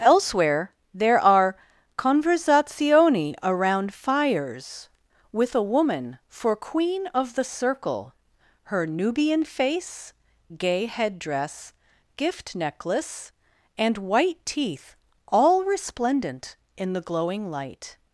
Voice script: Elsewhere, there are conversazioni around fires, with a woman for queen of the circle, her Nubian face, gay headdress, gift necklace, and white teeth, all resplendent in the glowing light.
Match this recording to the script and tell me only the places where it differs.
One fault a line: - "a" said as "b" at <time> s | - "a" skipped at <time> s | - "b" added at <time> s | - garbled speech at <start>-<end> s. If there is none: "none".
none